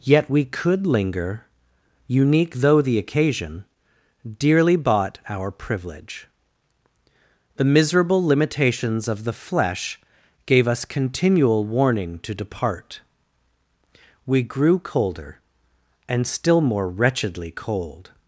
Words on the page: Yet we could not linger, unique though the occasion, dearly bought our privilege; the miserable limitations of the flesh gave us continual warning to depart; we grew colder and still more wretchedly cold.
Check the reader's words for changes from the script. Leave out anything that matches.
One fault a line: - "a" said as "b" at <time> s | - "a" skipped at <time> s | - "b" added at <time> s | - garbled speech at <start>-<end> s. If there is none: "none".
- "not" skipped at 0.9 s